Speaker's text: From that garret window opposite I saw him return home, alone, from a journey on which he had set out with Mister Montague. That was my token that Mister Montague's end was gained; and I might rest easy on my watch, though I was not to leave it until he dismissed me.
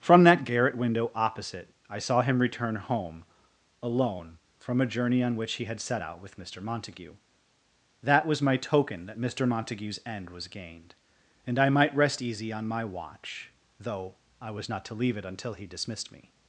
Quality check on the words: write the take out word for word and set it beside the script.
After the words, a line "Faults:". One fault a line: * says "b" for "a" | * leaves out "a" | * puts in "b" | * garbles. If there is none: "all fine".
From that garret window opposite I saw him return home, alone, from a journey on which he had set out with Mister Montague. That was my token that Mister Montague's end was gained; and I might rest easy on my watch, though I was not to leave it until he dismissed me.
Faults:
all fine